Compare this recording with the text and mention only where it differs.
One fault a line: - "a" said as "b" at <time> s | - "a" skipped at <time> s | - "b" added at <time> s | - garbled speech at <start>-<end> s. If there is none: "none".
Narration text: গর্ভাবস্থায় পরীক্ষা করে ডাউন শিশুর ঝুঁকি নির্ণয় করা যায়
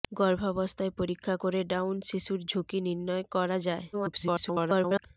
- garbled speech at 3.9-5.1 s